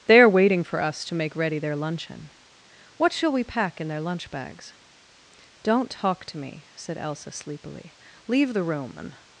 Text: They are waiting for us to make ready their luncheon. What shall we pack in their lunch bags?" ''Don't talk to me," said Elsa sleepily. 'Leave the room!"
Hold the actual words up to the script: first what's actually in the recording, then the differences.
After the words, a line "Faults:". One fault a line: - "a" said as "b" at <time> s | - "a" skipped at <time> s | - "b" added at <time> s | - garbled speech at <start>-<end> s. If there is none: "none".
They are waiting for us to make ready their luncheon. What shall we pack in their lunch bags?" ''Don't talk to me," said Elsa sleepily. 'Leave the room!" and
Faults:
- "and" added at 9.0 s